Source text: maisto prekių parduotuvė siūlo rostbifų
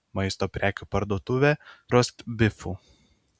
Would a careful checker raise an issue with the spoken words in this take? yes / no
yes